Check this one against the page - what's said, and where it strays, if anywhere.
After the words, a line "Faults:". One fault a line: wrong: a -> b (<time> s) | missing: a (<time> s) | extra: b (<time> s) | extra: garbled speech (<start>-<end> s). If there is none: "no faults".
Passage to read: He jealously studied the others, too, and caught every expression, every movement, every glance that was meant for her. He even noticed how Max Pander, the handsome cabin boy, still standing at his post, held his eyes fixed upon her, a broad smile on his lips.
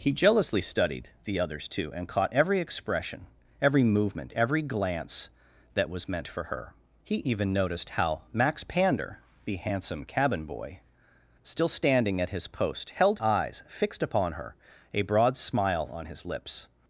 He jealously studied the others, too, and caught every expression, every movement, every glance that was meant for her. He even noticed how Max Pander, the handsome cabin boy, still standing at his post, held eyes fixed upon her, a broad smile on his lips.
Faults:
missing: his (13.2 s)